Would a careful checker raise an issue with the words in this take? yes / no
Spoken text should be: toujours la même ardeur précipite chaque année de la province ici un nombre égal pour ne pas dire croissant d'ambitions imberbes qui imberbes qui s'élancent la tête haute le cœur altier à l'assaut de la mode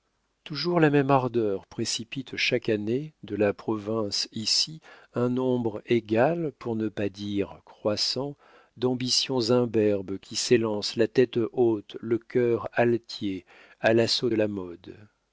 yes